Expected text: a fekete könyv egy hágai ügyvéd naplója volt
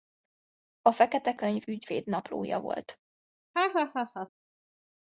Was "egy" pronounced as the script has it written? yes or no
no